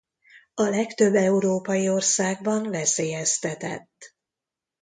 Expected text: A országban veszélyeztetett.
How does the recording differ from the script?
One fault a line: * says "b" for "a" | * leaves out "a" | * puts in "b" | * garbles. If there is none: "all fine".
* puts in "legtöbb európai"